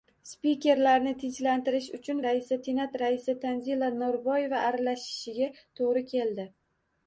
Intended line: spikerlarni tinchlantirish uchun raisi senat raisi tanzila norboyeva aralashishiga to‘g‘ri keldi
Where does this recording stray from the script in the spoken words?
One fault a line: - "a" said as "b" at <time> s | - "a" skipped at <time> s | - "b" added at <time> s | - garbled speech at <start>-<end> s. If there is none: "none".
none